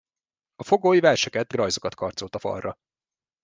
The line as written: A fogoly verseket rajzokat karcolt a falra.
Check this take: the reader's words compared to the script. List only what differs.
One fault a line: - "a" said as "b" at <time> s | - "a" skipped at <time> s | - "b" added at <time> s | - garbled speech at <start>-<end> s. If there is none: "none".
none